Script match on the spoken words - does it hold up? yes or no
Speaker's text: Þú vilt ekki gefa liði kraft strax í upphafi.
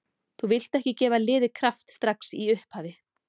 yes